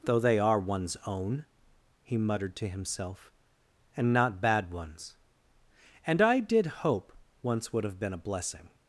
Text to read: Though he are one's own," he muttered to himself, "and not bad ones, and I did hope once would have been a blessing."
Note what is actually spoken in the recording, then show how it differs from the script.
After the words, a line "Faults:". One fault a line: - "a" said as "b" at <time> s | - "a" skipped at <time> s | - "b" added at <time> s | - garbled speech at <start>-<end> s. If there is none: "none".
Though they are one's own," he muttered to himself, "and not bad ones, and I did hope once would have been a blessing."
Faults:
- "he" said as "they" at 0.2 s